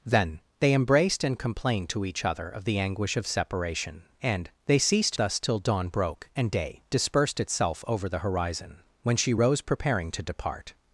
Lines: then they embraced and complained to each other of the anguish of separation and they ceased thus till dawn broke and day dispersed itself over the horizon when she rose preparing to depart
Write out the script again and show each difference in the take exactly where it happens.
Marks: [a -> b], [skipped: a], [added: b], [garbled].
then they embraced and complained to each other of the anguish of separation and they ceased thus till dawn broke and day dispersed itself over the horizon when she rose preparing to depart